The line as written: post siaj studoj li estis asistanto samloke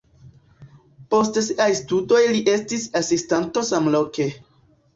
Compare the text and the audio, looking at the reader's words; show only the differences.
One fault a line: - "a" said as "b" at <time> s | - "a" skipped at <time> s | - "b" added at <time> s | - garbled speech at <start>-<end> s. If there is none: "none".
none